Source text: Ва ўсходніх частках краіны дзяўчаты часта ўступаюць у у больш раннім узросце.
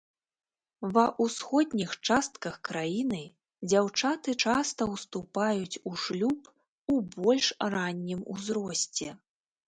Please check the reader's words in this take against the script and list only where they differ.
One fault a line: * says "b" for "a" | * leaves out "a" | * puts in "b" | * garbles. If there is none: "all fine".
* puts in "шлюб"